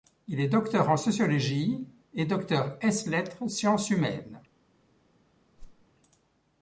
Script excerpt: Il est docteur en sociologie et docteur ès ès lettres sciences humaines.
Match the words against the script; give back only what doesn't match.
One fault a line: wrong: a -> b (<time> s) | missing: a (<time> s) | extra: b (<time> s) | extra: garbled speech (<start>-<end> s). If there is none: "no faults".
missing: ès (3.1 s)